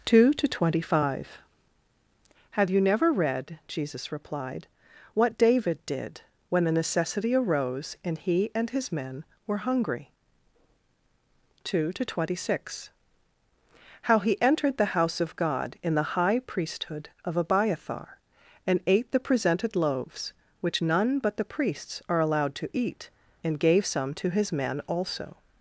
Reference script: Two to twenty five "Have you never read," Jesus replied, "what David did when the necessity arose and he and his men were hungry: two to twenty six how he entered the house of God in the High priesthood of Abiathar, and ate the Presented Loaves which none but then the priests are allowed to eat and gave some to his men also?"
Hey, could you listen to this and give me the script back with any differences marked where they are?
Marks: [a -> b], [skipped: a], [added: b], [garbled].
Two to twenty five "Have you never read," Jesus replied, "what David did when the necessity arose and he and his men were hungry: two to twenty six how he entered the house of God in the High priesthood of Abiathar, and ate the Presented Loaves which none but [skipped: then] the priests are allowed to eat and gave some to his men also?"